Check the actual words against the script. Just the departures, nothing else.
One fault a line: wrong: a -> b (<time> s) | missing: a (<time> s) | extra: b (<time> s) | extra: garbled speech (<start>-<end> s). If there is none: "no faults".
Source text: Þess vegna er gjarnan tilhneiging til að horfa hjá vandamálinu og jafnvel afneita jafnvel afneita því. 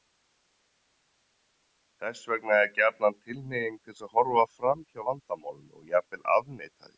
extra: fram (4.6 s)
missing: jafnvel afneita (6.8 s)